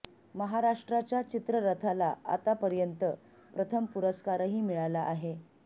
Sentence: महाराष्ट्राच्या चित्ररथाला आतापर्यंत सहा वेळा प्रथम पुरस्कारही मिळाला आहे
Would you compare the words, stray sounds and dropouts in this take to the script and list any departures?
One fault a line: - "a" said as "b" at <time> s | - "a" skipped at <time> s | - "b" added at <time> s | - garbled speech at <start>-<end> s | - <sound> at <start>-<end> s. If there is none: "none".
- "सहा वेळा" skipped at 3.0 s